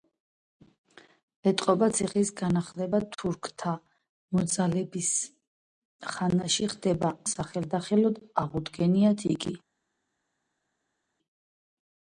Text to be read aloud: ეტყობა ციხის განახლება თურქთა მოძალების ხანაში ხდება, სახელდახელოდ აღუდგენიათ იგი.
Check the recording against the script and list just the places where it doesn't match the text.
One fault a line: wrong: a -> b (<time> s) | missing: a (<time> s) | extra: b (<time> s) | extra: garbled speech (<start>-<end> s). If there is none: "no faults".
no faults